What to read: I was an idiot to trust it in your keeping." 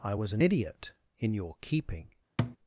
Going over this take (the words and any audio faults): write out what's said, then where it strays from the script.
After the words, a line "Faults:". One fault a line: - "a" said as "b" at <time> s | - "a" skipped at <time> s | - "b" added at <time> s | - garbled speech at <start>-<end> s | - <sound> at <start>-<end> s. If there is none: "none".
I was an idiot in your keeping."
Faults:
- "to trust it" skipped at 0.9 s
- thud at 2.4-2.6 s